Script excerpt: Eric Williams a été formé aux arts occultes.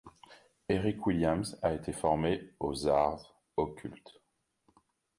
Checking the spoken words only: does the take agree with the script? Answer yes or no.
yes